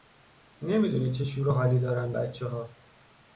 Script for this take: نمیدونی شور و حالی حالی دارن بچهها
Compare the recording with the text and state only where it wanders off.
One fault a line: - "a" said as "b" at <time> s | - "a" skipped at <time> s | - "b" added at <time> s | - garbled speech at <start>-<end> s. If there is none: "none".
- "چه" added at 1.1 s
- "حالی" skipped at 1.8 s